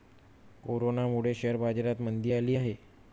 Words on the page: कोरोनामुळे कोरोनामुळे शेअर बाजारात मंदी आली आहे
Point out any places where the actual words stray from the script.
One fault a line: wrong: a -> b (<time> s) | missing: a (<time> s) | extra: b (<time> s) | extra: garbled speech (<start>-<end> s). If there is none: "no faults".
missing: कोरोनामुळे (1.3 s)